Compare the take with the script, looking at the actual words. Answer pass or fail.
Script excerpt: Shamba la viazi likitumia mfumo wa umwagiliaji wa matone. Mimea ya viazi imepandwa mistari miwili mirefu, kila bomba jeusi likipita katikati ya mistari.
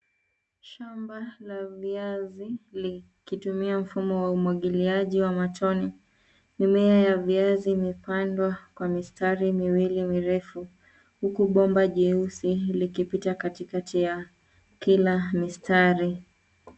fail